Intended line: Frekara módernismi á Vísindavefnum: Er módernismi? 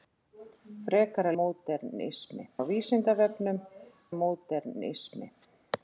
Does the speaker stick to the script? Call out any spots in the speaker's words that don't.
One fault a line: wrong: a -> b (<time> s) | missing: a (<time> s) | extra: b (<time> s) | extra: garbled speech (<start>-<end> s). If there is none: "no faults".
no faults